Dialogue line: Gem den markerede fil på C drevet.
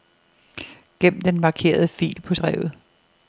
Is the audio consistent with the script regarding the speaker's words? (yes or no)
no